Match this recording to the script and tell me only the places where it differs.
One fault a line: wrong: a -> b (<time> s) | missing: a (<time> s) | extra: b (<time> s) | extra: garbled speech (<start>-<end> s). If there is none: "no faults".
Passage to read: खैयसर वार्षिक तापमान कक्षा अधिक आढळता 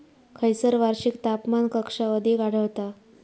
no faults